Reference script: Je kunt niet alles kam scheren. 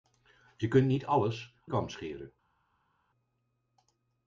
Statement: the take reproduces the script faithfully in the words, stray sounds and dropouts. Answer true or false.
true